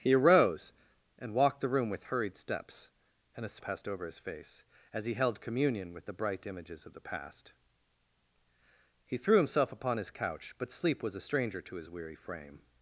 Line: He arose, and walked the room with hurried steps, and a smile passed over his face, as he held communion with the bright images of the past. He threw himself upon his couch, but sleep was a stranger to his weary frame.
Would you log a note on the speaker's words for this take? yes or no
yes